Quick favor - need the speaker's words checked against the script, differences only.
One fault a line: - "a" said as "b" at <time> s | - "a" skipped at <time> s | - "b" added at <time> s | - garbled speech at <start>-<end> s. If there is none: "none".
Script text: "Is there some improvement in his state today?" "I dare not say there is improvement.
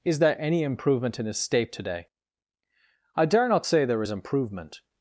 - "some" said as "any" at 0.4 s